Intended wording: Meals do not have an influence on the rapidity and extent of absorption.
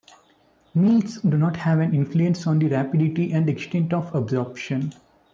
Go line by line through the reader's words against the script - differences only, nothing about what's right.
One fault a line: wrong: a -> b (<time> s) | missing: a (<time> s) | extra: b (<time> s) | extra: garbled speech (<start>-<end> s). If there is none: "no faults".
no faults